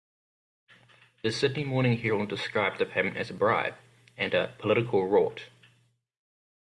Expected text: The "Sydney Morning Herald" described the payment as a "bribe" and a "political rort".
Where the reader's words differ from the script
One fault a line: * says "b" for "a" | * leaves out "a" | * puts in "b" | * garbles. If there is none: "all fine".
all fine